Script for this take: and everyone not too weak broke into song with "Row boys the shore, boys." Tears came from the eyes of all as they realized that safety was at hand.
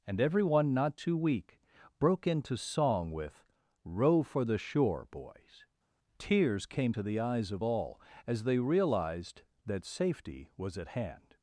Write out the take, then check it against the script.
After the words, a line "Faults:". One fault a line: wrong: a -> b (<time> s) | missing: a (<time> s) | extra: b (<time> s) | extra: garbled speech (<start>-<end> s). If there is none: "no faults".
and everyone not too weak broke into song with "Row for the shore, boys." Tears came to the eyes of all as they realized that safety was at hand.
Faults:
wrong: boys -> for (4.2 s)
wrong: from -> to (6.9 s)